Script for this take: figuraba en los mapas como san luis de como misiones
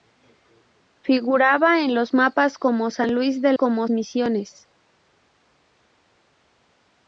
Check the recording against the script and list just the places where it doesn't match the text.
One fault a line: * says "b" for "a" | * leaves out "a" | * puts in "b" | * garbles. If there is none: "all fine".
all fine